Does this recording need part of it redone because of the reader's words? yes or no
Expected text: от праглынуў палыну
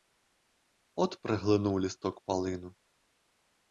yes